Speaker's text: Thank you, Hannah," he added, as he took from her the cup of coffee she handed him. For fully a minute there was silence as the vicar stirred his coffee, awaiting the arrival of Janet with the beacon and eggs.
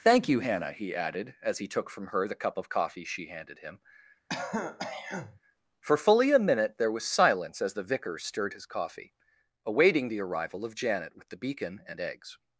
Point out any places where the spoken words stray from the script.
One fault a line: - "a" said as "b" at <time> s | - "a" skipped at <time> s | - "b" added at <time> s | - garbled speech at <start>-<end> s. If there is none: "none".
none